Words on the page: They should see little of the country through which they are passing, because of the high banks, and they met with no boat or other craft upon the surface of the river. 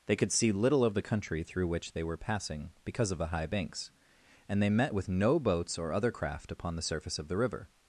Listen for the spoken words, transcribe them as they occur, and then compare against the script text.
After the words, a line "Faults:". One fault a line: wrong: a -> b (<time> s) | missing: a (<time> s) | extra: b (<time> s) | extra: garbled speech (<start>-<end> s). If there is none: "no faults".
They could see little of the country through which they were passing, because of the high banks, and they met with no boats or other craft upon the surface of the river.
Faults:
wrong: should -> could (0.1 s)
wrong: are -> were (2.0 s)
wrong: boat -> boats (5.4 s)